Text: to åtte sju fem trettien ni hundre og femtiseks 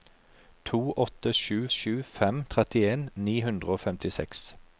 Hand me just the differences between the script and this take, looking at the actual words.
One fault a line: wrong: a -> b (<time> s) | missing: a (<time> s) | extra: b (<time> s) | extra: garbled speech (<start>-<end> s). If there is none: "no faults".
extra: sju (1.7 s)